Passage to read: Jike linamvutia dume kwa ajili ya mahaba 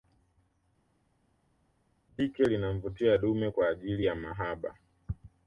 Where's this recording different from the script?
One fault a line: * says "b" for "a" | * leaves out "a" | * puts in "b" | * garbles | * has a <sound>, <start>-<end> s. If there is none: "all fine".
all fine